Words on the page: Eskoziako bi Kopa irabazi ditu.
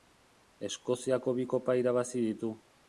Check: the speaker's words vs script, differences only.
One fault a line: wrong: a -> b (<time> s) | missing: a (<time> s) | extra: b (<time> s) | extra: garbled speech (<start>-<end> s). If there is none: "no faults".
no faults